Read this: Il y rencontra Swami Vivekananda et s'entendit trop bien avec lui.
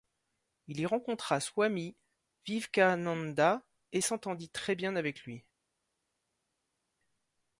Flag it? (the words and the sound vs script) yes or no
yes